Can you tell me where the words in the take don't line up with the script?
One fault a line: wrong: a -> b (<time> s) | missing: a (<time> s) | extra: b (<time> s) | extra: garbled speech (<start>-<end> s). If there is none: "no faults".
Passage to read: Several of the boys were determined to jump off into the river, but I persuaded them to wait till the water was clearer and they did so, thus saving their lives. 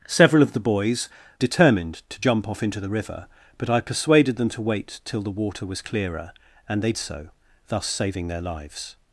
missing: were (1.1 s)
missing: did (6.9 s)